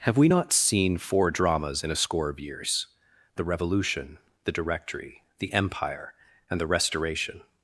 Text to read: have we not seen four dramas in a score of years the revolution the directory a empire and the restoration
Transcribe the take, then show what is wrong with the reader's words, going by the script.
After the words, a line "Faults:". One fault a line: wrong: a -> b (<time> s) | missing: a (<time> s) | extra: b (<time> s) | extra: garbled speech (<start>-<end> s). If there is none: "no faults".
have we not seen four dramas in a score of years the revolution the directory the empire and the restoration
Faults:
wrong: a -> the (5.4 s)